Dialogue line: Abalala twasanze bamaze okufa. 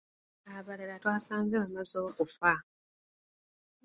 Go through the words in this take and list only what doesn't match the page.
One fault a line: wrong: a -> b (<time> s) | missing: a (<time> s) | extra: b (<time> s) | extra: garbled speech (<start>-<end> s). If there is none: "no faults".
no faults